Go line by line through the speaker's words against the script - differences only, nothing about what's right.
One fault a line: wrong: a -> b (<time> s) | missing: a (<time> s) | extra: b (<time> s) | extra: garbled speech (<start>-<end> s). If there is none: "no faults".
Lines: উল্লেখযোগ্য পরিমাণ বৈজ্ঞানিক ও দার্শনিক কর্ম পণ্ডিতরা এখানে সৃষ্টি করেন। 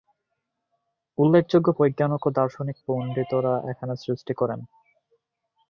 missing: পরিমাণ (1.7 s)
missing: কর্ম (2.8 s)